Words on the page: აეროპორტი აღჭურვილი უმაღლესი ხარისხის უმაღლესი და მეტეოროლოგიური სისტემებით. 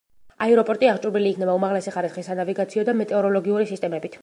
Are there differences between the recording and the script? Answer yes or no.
yes